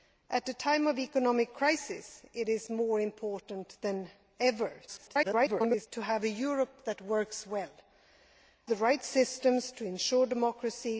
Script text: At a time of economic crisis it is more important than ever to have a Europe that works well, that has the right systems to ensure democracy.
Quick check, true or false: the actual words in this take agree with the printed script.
false